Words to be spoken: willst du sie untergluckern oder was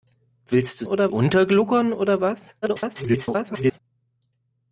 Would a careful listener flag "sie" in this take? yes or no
yes